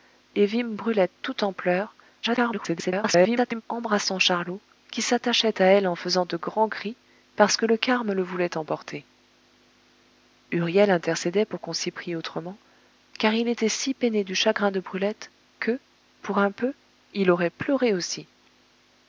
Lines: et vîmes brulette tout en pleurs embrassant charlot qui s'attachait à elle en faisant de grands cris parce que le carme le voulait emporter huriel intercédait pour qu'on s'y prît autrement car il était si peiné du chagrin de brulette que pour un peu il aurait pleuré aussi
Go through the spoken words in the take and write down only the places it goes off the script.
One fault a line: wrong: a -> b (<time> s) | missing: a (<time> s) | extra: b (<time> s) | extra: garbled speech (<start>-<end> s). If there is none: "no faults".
extra: garbled speech (2.2-3.6 s)